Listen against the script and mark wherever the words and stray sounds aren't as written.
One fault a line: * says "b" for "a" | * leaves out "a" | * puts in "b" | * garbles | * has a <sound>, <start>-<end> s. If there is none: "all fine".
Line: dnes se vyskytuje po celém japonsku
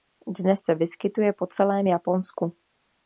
all fine